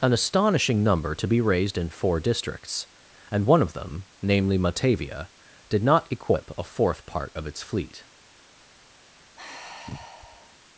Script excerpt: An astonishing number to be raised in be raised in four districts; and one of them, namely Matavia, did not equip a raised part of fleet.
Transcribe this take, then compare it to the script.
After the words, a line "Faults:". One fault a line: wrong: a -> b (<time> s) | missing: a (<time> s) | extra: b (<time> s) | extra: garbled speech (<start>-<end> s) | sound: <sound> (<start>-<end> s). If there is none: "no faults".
An astonishing number to be raised in four districts; and one of them, namely Matavia, did not equip a fourth part of its fleet.
Faults:
missing: be raised in (1.9 s)
wrong: raised -> fourth (6.6 s)
extra: its (7.5 s)
sound: sigh (9.4-10.6 s)